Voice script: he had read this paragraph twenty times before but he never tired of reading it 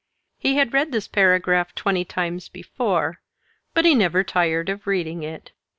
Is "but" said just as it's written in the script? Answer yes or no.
yes